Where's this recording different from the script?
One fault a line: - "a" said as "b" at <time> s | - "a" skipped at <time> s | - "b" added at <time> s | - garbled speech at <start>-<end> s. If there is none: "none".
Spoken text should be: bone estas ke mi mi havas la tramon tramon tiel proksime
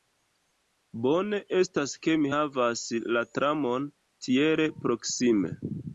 - "mi" skipped at 2.3 s
- "tramon" skipped at 3.9 s